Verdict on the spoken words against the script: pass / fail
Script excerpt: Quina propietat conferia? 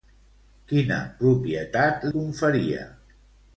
pass